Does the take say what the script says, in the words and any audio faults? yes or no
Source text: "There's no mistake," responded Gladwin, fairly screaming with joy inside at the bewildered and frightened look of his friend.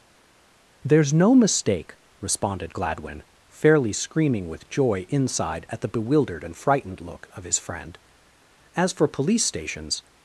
no